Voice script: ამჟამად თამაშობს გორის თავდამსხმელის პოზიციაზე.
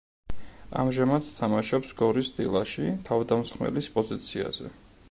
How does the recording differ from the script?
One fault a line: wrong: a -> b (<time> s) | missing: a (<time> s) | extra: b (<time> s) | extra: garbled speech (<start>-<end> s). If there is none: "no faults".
extra: დილაში (2.4 s)